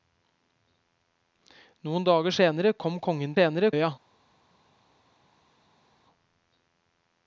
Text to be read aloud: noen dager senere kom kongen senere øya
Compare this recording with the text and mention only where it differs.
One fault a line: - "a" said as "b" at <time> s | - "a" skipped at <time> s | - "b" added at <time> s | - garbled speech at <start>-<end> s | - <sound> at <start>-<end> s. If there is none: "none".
none